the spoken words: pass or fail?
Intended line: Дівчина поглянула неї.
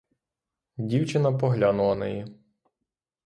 pass